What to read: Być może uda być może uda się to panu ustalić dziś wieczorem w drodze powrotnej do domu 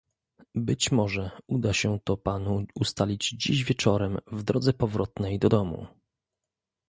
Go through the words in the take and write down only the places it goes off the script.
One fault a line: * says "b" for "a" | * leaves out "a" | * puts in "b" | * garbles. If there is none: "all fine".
* leaves out "być może uda"